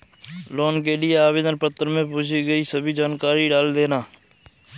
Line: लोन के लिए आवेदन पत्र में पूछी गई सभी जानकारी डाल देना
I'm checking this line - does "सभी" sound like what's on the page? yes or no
yes